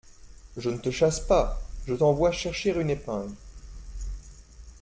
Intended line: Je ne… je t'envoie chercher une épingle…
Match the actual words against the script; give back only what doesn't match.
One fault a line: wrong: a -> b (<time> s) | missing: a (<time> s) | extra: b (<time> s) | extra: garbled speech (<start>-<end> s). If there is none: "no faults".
extra: te chasse pas (0.8 s)